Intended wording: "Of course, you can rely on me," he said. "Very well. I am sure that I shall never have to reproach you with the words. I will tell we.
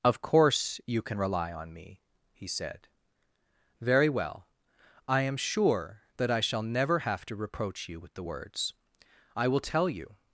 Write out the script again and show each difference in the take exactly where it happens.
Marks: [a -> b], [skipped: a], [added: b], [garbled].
"Of course, you can rely on me," he said. "Very well. I am sure that I shall never have to reproach you with the words. I will tell [we. -> you]